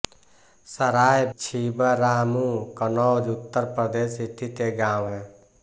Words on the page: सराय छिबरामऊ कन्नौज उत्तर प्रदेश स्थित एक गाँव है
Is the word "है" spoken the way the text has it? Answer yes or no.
yes